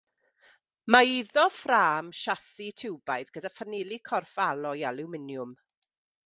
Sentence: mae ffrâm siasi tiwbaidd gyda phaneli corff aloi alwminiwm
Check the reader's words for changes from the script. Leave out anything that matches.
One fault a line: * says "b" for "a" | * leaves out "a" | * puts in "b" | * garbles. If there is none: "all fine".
* puts in "iddo"